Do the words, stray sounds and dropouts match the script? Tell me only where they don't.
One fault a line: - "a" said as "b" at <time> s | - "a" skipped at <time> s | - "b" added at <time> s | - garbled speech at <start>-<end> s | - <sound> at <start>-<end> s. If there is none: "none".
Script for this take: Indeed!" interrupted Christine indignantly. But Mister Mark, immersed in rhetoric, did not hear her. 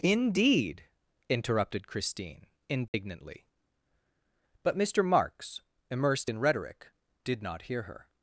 - dropout at 2.9-2.9 s
- "Mark" said as "Marks" at 5.0 s